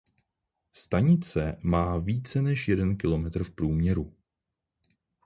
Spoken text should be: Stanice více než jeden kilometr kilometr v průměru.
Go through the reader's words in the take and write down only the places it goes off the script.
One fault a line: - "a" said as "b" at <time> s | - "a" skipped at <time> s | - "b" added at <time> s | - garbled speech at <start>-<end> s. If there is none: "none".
- "má" added at 1.6 s
- "kilometr" skipped at 3.4 s